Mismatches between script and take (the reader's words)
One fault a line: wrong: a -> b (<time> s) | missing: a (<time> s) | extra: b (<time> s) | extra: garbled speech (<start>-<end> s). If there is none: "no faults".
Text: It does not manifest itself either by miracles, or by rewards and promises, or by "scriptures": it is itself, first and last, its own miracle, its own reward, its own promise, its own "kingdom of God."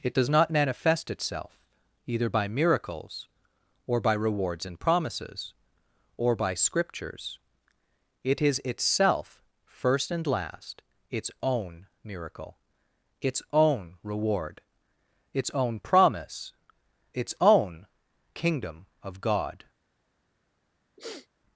no faults